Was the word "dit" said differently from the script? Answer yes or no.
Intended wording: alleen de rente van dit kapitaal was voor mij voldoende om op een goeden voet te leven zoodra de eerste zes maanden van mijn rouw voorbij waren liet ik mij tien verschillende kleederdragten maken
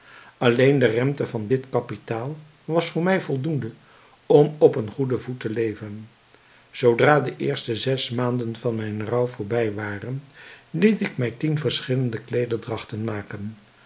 no